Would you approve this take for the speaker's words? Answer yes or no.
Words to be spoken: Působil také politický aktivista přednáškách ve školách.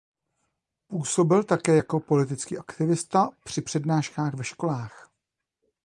no